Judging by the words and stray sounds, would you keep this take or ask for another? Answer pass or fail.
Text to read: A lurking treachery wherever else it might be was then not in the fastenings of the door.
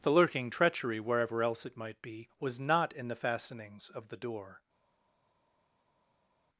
fail